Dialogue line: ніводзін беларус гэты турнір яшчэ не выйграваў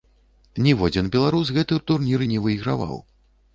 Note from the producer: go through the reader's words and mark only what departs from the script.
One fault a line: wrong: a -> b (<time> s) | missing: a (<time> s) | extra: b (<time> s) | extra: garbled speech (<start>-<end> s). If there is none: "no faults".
missing: яшчэ (2.2 s)